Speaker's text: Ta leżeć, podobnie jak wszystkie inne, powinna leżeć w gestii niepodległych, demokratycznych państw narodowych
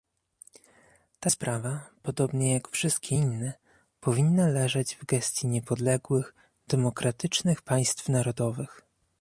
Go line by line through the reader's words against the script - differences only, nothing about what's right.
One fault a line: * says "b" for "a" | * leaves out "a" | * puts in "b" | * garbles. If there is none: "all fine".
* says "sprawa" for "leżeć"